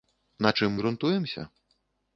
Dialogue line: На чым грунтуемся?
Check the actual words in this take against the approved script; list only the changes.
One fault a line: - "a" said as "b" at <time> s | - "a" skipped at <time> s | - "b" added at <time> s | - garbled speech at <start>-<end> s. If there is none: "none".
none